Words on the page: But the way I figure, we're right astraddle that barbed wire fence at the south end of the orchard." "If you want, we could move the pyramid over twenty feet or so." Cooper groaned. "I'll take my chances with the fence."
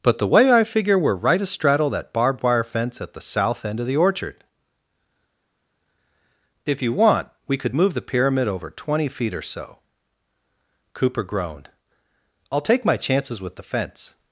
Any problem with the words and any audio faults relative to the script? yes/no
no